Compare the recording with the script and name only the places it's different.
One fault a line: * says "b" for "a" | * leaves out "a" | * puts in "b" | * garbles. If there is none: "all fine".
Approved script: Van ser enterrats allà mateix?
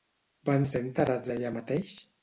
all fine